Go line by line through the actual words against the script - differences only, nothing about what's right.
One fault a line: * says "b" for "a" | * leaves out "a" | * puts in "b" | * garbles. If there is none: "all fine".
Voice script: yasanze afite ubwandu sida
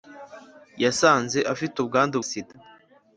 all fine